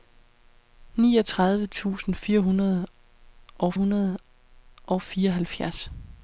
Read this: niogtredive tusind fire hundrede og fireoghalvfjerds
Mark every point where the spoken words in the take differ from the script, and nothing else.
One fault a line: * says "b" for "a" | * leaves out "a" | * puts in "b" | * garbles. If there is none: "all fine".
* puts in "hundrede og"